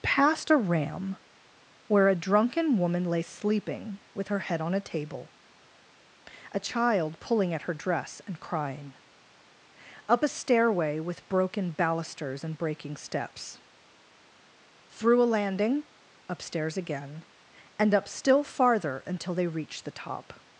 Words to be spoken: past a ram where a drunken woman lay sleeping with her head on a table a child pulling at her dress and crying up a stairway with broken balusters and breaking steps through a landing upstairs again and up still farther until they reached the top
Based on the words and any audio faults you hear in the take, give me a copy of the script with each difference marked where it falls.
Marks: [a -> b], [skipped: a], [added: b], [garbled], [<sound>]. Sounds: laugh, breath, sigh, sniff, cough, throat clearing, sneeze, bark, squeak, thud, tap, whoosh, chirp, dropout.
past a ram where a drunken woman lay sleeping with her head on a table a child pulling at her dress and crying up a stairway with broken balusters and breaking steps through a landing upstairs again and up still farther until they reached the top